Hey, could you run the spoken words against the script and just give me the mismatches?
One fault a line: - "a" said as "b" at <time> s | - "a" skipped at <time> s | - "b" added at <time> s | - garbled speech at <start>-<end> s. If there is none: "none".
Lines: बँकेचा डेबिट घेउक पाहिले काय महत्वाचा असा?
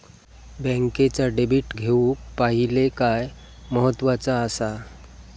none